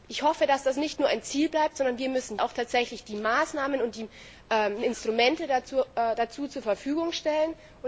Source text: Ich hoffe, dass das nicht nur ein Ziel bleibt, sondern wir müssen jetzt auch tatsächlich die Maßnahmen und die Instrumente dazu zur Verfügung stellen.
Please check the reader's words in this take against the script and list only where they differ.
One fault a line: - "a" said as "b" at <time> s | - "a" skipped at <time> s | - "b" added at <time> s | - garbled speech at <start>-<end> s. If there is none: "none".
- "jetzt" skipped at 2.4 s